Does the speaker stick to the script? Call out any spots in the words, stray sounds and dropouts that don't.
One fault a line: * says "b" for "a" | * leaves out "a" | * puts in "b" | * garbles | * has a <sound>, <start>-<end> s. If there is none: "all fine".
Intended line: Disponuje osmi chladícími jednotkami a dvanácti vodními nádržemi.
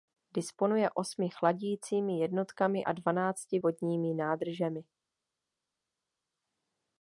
all fine